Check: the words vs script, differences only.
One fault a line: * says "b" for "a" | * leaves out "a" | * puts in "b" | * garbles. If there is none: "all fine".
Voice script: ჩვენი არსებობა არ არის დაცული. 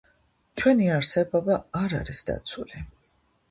all fine